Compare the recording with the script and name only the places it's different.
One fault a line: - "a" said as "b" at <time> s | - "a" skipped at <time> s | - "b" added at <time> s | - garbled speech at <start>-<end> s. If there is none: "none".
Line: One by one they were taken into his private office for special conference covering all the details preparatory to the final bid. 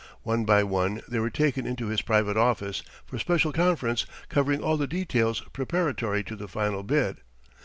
none